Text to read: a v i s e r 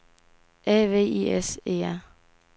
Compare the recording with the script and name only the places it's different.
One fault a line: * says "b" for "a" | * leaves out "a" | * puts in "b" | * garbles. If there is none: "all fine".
all fine